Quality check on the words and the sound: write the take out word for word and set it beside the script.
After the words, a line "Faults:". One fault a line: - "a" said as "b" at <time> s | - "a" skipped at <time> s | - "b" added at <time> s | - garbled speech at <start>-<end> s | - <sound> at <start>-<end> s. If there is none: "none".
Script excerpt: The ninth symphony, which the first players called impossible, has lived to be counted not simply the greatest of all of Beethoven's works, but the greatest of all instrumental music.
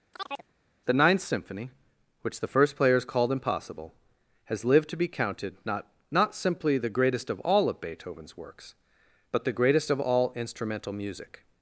The ninth symphony, which the first players called impossible, has lived to be counted not not simply the greatest of all of Beethoven's works, but the greatest of all instrumental music.
Faults:
- chirp at 0.1-0.5 s
- "not" added at 6.1 s